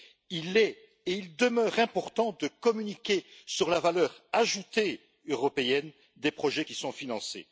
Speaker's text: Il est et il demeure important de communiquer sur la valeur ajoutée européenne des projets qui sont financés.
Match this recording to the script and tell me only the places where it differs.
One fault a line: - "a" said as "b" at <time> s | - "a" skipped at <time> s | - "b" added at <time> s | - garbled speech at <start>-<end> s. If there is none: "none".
none